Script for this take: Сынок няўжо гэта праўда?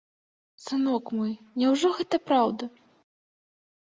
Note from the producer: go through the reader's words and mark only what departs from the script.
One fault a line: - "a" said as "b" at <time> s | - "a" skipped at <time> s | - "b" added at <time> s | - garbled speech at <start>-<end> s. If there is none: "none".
- "мой" added at 1.2 s